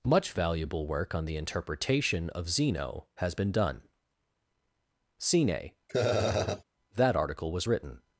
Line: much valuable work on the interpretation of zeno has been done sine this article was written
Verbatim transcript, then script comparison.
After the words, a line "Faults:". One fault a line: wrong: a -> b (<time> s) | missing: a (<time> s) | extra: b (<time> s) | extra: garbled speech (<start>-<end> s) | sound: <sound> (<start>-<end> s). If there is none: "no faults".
much valuable work on the interpretation of zeno has been done sine that article was written
Faults:
sound: laugh (5.9-6.6 s)
wrong: this -> that (6.9 s)